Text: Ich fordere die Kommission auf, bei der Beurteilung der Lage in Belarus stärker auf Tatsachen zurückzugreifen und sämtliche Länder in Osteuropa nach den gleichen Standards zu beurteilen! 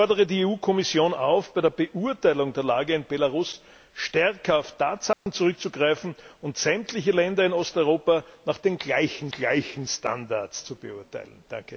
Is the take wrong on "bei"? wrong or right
right